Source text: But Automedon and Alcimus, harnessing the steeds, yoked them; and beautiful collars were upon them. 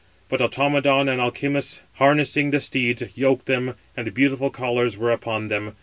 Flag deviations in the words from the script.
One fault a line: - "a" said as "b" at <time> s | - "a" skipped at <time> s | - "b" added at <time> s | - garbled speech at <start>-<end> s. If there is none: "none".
none